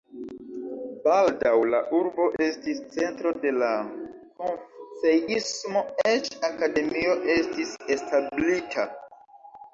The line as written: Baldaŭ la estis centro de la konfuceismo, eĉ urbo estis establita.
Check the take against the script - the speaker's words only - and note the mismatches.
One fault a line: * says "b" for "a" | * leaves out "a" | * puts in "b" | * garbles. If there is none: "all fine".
* puts in "urbo"
* says "akademio" for "urbo"